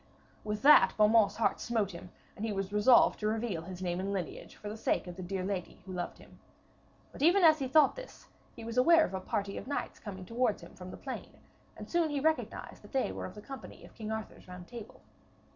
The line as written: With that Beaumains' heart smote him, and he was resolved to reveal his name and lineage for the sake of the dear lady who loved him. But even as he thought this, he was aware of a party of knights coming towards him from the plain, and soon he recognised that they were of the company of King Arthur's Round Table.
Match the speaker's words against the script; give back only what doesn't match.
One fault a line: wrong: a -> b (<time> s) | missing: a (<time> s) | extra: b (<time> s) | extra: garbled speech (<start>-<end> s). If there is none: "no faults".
no faults